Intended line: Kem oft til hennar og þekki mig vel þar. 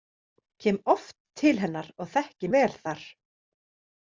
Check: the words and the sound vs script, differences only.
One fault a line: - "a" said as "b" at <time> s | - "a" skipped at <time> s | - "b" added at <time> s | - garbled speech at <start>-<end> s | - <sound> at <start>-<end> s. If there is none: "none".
- "mig" skipped at 2.5 s